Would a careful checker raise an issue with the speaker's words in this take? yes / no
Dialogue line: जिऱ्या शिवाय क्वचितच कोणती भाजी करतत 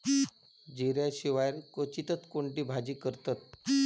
no